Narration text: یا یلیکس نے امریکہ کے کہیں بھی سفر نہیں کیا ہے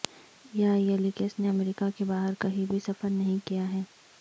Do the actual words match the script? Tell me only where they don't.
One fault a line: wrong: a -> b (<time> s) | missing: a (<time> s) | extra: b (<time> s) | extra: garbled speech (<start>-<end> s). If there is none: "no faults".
extra: باہر (2.0 s)